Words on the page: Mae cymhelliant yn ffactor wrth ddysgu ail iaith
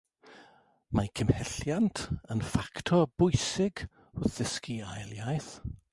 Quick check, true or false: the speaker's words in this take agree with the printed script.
false